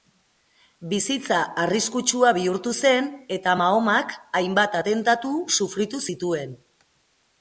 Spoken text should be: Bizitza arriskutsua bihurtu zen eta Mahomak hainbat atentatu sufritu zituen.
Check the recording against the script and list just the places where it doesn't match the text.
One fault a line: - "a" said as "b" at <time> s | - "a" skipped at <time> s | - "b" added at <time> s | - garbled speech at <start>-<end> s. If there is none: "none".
none